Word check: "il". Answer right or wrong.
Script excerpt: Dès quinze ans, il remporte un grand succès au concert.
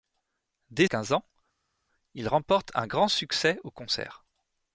right